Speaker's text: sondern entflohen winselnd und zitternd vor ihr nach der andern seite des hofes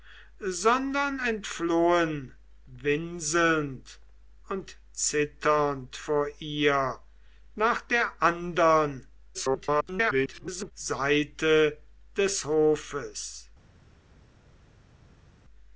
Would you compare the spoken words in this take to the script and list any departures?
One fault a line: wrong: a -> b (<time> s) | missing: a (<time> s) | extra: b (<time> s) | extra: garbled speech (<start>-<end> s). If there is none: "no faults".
extra: garbled speech (9.3-10.7 s)